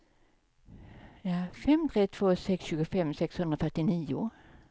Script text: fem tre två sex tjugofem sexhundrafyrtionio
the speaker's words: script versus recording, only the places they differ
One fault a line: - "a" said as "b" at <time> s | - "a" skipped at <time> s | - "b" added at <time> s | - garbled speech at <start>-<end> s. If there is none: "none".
none